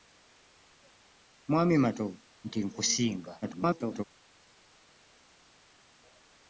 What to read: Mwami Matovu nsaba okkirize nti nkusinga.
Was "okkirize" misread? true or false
true